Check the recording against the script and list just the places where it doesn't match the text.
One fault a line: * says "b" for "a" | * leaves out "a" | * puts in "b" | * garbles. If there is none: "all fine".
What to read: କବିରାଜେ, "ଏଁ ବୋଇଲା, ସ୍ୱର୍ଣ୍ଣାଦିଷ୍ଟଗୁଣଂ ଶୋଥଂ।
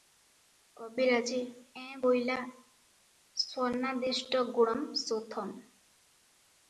all fine